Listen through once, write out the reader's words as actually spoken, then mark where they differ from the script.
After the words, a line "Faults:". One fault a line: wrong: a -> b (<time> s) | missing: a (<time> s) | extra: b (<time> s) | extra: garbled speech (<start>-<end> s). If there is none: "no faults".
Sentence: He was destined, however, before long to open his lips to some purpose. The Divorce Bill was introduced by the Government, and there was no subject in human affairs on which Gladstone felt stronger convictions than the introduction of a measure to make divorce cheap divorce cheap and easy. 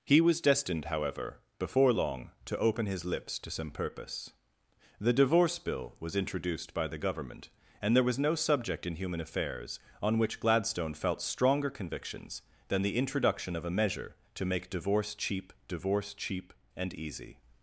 He was destined, however, before long to open his lips to some purpose. The Divorce Bill was introduced by the Government, and there was no subject in human affairs on which Gladstone felt stronger convictions than the introduction of a measure to make divorce cheap divorce cheap and easy.
Faults:
no faults